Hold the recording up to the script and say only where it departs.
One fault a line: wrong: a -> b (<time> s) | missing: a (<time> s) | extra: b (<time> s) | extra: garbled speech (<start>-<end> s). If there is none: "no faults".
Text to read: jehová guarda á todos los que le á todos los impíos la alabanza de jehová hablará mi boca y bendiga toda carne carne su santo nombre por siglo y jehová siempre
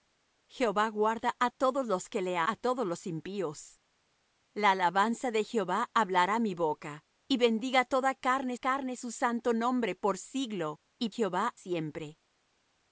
no faults